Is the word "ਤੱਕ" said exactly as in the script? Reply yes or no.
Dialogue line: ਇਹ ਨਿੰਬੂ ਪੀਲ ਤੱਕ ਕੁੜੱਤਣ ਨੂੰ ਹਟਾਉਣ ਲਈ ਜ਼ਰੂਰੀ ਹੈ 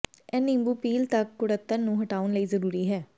yes